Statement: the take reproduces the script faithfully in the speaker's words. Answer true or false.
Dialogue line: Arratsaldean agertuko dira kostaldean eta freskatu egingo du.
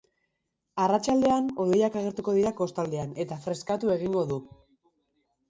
false